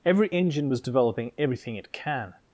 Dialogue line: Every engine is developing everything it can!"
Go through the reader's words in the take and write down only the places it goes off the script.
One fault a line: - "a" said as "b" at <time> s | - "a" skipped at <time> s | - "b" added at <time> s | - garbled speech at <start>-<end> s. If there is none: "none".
- "is" said as "was" at 0.7 s